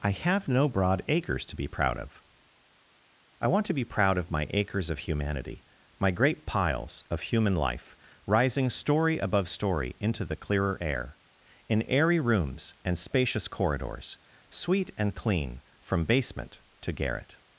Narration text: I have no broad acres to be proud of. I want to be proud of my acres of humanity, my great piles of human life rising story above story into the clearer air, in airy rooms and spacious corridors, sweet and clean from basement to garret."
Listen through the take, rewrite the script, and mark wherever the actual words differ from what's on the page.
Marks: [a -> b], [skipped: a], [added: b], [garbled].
I have no broad acres to be proud of. I want to be proud of my acres of humanity, my great piles of human life rising story above story into the clearer air, in airy rooms and spacious corridors, sweet and clean from basement to garret."